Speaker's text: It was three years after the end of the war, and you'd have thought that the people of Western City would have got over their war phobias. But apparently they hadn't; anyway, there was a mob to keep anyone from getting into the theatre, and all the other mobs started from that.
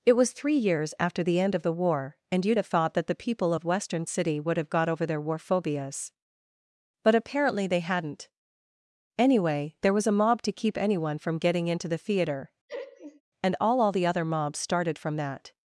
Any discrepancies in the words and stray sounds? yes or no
yes